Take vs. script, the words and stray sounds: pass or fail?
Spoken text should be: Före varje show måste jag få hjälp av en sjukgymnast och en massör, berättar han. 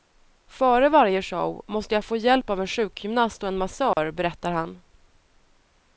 fail